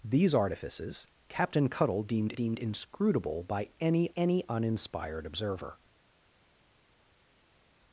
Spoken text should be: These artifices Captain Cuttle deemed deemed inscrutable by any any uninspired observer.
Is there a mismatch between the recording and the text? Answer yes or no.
no